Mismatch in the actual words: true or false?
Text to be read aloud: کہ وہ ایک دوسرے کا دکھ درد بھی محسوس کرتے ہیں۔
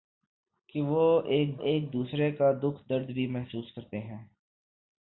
true